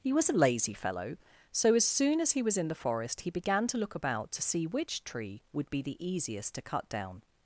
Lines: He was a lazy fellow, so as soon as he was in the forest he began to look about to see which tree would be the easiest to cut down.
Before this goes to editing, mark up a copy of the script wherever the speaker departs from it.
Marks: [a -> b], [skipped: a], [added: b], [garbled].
He was a lazy fellow, so as soon as he was in the forest he began to look about to see which tree would be the easiest to cut down.